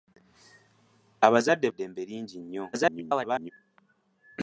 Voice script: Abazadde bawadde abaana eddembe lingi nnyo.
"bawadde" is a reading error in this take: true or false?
true